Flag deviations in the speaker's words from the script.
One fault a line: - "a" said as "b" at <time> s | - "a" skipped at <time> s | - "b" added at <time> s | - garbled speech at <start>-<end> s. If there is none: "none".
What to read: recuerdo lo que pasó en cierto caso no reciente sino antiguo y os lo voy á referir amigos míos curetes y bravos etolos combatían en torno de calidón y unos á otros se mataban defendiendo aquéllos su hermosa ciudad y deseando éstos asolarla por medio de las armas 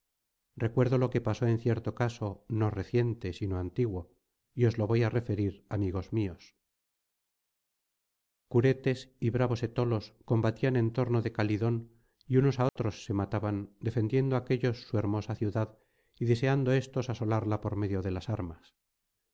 none